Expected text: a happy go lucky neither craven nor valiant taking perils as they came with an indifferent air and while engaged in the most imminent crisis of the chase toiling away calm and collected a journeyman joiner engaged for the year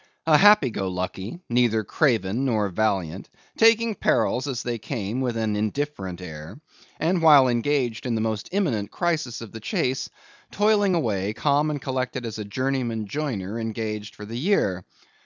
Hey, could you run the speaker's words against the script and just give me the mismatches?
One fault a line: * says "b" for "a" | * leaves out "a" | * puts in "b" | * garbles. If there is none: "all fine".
* puts in "as"